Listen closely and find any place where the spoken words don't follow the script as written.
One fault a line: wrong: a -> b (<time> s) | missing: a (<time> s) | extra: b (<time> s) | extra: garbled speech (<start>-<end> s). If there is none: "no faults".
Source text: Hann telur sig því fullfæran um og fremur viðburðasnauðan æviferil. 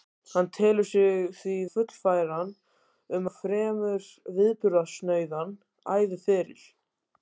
no faults